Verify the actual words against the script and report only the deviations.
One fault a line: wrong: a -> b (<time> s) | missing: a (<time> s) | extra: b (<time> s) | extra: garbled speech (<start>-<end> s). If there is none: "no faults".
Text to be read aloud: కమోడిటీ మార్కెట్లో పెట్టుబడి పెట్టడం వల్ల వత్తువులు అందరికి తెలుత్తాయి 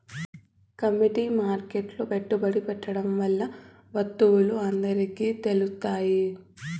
no faults